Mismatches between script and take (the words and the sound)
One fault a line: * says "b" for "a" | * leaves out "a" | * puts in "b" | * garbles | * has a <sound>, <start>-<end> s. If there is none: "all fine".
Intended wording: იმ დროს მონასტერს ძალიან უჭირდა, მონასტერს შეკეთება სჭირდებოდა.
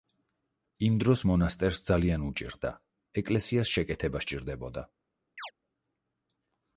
* says "ეკლესიას" for "მონასტერს"
* has a chirp, 5.4-5.5 s